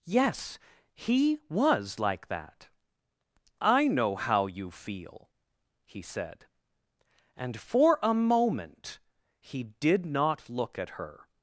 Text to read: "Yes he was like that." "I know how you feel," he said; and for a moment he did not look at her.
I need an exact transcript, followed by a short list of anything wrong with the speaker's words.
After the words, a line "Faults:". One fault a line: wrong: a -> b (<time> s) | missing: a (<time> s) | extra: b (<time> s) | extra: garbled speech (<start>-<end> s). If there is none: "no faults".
"Yes he was like that." "I know how you feel," he said; and for a moment he did not look at her.
Faults:
no faults